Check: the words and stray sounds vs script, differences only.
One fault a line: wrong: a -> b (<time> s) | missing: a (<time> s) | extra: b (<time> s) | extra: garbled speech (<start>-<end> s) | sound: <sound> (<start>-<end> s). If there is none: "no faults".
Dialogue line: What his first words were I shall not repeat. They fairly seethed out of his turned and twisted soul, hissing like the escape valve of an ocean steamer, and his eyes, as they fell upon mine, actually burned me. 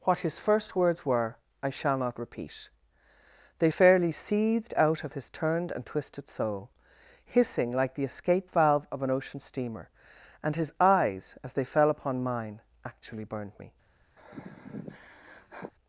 sound: sigh (14.2-15.7 s)